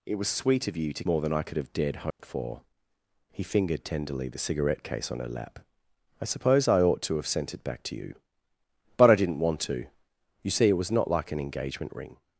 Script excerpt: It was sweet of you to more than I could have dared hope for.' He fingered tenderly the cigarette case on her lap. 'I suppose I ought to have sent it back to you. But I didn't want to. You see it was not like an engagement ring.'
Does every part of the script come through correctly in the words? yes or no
yes